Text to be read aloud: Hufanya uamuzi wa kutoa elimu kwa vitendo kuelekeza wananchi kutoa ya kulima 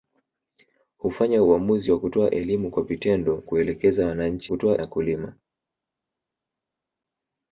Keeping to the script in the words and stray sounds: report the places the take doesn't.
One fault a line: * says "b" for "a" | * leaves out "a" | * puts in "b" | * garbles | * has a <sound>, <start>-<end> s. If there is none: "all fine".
all fine